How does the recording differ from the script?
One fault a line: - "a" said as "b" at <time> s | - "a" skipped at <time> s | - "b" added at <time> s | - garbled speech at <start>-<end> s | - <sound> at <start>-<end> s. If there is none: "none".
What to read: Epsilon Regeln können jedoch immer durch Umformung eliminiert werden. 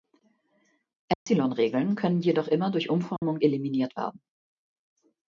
- dropout at 1.1-1.3 s
- dropout at 3.2-3.2 s